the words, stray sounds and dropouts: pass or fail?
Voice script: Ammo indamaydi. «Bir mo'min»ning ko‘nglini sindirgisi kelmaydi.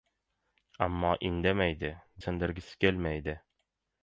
fail